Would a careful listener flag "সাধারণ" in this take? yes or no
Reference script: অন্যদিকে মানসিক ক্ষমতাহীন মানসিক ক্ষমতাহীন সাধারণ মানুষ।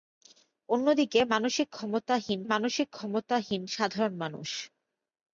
no